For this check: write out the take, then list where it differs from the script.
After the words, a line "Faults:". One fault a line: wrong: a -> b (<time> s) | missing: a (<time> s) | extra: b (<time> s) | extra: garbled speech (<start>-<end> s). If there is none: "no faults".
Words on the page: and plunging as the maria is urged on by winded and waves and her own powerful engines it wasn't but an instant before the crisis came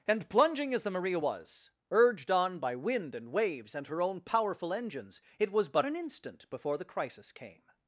and plunging as the maria was urged on by wind and waves and her own powerful engines it was but an instant before the crisis came
Faults:
wrong: is -> was (1.2 s)
wrong: winded -> wind (2.7 s)
wrong: wasn't -> was (5.5 s)